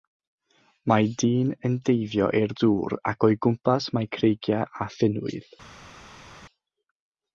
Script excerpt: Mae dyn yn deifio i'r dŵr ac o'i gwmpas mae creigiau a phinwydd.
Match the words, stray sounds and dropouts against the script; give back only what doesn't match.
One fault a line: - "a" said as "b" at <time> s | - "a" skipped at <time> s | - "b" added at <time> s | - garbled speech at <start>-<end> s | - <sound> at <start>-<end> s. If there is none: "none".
none